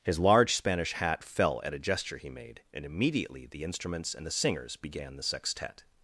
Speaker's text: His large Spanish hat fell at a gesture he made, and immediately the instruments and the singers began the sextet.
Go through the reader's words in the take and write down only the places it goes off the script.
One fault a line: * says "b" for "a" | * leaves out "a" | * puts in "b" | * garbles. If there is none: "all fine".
all fine